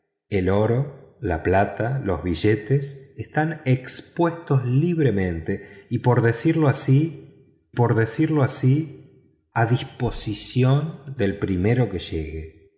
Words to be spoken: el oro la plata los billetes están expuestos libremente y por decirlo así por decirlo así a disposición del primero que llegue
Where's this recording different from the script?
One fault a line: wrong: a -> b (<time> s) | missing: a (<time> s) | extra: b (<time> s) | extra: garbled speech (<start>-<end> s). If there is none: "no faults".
no faults